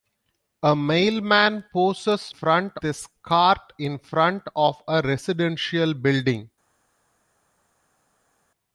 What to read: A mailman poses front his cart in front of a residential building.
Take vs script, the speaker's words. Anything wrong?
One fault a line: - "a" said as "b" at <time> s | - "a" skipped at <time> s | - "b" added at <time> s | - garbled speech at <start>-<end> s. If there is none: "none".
none